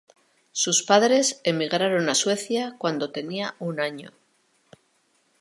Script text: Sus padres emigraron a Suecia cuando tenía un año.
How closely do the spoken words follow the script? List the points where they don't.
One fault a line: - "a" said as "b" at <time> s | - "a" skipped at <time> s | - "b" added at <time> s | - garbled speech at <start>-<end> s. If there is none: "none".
none